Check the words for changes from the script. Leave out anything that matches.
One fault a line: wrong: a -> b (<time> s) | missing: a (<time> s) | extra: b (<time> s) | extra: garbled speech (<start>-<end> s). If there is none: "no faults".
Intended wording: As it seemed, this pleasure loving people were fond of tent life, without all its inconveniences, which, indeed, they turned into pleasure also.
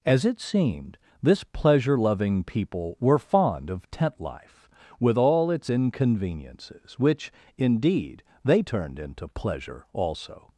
wrong: without -> with (5.0 s)